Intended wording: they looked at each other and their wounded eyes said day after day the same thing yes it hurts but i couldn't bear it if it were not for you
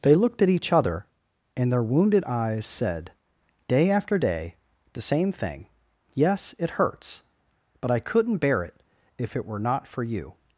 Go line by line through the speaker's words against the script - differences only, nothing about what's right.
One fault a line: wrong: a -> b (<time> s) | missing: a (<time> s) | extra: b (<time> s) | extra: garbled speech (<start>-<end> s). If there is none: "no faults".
no faults